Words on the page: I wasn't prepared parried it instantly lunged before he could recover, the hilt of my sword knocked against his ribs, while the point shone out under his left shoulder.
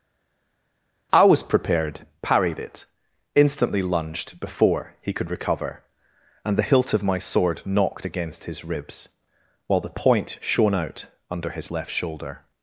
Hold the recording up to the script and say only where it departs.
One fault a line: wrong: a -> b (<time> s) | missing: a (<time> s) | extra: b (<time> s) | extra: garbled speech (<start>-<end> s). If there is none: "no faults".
wrong: wasn't -> was (1.2 s)
extra: and (6.4 s)